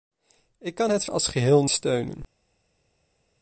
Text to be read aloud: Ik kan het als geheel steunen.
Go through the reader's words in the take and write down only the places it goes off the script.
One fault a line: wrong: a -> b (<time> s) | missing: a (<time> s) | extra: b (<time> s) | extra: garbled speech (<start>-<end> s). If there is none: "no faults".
no faults